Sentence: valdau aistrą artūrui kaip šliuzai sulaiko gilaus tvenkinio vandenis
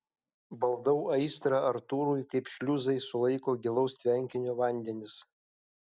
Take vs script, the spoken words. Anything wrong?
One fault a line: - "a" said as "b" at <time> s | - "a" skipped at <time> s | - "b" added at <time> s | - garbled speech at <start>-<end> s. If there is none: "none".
none